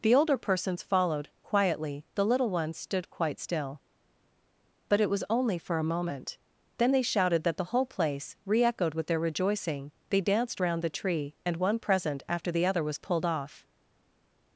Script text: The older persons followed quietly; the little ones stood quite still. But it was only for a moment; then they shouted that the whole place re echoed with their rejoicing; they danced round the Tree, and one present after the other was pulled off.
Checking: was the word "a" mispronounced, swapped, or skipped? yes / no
no